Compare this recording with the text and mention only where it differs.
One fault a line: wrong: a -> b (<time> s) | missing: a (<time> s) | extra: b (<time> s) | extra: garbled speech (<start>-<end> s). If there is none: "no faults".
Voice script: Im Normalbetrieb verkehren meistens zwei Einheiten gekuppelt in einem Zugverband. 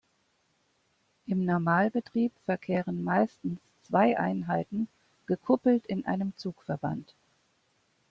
no faults